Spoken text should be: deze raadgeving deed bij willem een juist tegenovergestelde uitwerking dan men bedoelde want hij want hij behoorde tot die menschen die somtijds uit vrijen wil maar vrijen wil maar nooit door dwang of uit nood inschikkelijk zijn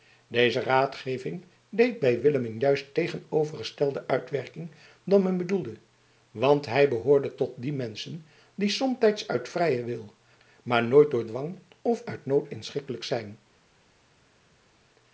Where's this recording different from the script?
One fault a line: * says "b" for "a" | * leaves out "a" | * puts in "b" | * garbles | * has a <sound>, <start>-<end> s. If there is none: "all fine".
* leaves out "want hij"
* leaves out "vrijen wil maar"